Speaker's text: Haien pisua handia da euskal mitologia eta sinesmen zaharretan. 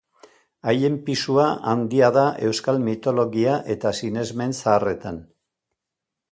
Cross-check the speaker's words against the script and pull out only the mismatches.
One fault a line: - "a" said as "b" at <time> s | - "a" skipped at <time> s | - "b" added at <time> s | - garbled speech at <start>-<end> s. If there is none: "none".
none